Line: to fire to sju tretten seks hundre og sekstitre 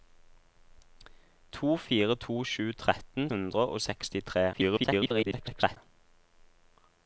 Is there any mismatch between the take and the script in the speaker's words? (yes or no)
yes